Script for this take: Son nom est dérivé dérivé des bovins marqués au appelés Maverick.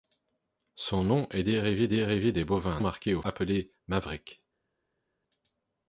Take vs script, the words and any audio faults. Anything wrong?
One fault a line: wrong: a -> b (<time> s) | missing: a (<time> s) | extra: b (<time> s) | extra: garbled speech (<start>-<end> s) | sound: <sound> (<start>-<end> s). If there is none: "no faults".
no faults